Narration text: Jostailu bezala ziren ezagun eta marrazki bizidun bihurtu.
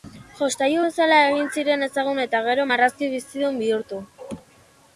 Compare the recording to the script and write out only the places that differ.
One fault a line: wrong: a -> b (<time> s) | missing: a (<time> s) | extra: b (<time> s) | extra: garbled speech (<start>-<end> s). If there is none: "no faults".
extra: egin (1.3 s)
extra: gero (2.5 s)